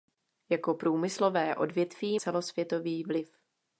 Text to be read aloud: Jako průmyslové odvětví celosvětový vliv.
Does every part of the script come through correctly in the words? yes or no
yes